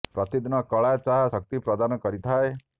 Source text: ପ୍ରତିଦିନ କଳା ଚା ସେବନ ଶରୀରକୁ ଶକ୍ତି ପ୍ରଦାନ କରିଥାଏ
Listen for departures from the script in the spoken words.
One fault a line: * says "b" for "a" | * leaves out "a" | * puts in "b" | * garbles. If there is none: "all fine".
* leaves out "ସେବନ ଶରୀରକୁ"